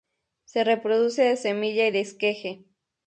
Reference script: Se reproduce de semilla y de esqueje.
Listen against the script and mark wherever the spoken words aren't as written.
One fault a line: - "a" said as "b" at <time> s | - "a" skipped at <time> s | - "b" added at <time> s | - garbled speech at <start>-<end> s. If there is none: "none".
none